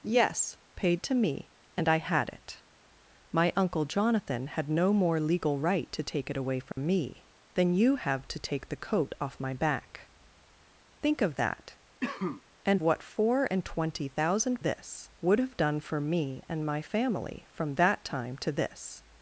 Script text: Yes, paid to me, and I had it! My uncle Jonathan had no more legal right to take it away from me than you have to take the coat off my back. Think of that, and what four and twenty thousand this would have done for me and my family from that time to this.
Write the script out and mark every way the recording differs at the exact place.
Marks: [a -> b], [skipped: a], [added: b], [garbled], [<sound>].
Yes, paid to me, and I had it! My uncle Jonathan had no more legal right to take it away from [dropout] me than you have to take the coat off my back. Think of that, [cough] and what four and twenty thousand this would have done for me and my family from that time to this.